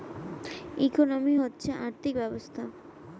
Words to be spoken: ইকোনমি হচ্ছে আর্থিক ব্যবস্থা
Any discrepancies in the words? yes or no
no